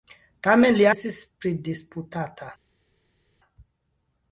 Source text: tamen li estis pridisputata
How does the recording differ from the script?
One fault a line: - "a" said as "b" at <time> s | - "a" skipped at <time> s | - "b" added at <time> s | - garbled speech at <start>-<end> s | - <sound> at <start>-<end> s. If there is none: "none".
none